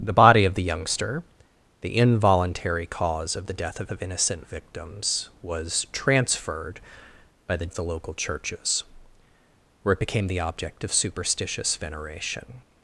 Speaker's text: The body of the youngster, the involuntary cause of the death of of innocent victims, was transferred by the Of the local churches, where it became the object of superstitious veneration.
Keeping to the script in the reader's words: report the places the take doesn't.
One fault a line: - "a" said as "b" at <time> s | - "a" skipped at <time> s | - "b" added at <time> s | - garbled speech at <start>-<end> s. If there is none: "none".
none